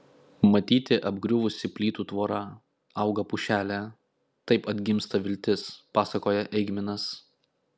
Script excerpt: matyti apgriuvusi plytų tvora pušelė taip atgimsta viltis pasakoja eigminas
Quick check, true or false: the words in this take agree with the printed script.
false